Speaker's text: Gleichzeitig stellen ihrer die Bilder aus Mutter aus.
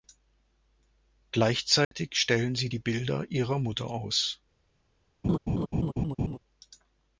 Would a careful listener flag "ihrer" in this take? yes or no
yes